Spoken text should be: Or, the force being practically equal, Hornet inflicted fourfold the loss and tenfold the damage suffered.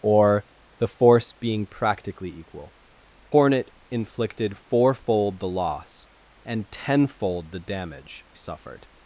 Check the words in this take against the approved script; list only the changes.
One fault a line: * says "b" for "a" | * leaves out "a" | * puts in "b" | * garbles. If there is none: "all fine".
all fine